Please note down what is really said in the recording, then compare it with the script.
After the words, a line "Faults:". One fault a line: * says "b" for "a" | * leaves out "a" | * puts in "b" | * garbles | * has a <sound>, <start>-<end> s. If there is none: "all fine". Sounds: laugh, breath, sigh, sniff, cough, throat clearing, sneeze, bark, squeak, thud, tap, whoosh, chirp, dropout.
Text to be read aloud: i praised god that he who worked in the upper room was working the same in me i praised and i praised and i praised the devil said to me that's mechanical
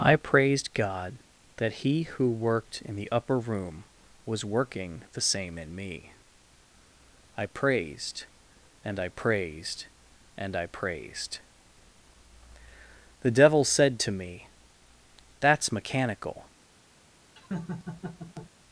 i praised god that he who worked in the upper room was working the same in me i praised and i praised and i praised the devil said to me that's mechanical
Faults:
* has a laugh, 17.4-18.5 s